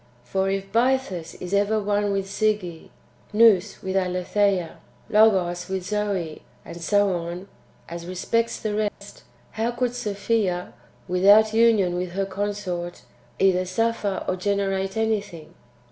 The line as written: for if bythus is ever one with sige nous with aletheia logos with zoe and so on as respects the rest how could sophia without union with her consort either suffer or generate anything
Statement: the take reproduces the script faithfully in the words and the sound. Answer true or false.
false